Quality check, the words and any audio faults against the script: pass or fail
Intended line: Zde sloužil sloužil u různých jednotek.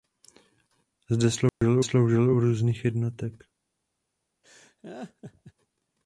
fail